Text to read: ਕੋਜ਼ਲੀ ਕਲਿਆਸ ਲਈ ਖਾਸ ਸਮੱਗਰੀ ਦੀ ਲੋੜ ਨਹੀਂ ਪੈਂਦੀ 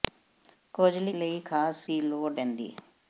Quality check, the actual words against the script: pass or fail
fail